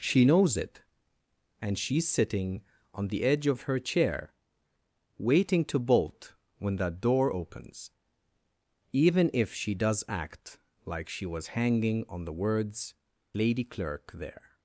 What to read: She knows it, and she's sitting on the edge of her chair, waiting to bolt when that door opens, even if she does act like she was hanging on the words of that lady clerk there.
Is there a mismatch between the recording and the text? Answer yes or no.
yes